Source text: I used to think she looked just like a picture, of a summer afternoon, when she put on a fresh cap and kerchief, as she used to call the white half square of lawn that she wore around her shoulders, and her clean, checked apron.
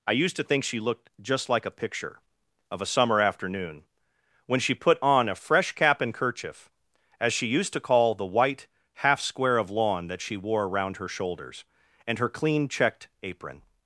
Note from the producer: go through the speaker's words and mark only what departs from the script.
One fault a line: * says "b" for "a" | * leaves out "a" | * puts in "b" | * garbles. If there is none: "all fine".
all fine